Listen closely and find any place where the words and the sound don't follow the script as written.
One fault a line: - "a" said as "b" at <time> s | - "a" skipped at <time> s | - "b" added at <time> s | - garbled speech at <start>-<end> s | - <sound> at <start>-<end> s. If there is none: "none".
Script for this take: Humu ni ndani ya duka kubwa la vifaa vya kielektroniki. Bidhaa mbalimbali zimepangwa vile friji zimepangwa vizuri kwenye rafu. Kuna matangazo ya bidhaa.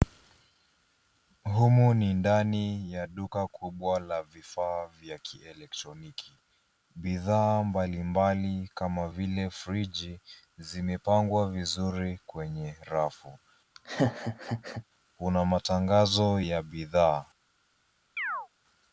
- "zimepangwa" said as "kama" at 8.8 s
- laugh at 13.7-14.8 s
- chirp at 18.2-18.5 s